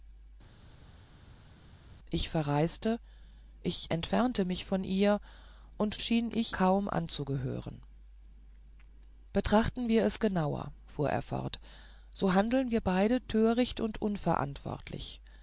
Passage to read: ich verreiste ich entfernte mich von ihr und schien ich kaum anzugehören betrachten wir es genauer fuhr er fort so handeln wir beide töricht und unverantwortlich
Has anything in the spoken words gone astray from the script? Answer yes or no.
no